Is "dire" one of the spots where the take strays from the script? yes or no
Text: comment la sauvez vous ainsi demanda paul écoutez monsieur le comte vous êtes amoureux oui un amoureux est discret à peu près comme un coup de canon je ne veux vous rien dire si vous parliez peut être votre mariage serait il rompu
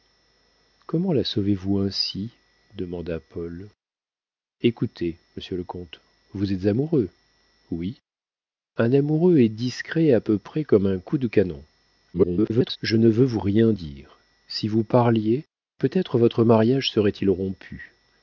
no